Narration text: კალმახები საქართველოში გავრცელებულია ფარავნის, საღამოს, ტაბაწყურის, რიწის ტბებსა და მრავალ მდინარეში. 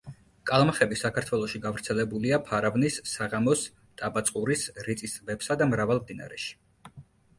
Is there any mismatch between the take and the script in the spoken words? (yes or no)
no